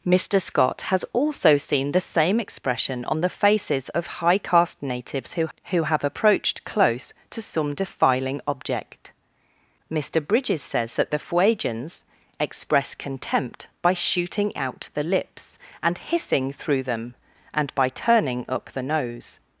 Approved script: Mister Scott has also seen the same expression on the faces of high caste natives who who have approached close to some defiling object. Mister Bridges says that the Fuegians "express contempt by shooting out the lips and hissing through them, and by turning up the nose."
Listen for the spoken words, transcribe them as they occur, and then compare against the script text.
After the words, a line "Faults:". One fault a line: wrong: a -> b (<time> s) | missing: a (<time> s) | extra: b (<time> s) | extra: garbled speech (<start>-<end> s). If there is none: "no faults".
Mister Scott has also seen the same expression on the faces of high caste natives who who have approached close to some defiling object. Mister Bridges says that the Fuegians "express contempt by shooting out the lips and hissing through them, and by turning up the nose."
Faults:
no faults